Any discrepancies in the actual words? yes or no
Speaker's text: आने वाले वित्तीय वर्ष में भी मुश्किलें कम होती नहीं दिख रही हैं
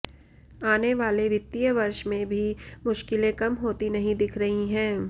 no